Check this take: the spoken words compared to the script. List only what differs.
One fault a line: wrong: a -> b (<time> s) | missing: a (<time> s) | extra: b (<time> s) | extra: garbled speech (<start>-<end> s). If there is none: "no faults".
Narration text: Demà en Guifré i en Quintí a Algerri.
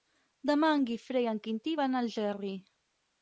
extra: van (1.8 s)